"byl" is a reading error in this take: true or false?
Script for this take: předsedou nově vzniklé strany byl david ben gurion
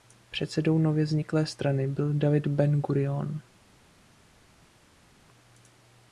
false